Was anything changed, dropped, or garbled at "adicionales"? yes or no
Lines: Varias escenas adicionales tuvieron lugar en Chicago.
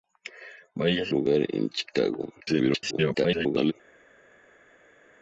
yes